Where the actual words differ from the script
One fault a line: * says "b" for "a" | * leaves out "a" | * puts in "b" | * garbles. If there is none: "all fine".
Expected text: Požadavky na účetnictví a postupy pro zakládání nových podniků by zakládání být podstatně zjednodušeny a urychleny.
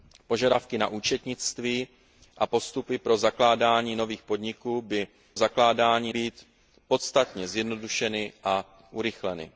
all fine